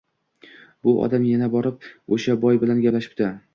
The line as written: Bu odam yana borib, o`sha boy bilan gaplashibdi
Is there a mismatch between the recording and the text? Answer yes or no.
no